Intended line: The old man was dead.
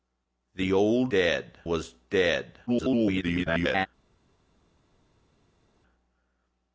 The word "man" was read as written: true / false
false